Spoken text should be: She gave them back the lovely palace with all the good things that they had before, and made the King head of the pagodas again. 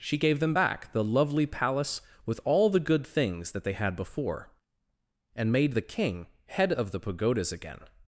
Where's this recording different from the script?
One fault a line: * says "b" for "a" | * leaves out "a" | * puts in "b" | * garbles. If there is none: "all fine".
all fine